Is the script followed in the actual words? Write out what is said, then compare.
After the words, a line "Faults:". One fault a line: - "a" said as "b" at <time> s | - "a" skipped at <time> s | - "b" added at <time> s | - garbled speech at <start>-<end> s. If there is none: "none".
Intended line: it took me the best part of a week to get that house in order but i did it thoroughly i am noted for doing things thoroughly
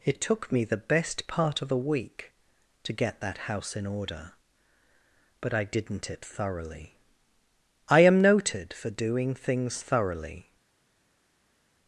it took me the best part of a week to get that house in order but i didn't it thoroughly i am noted for doing things thoroughly
Faults:
- "did" said as "didn't" at 5.6 s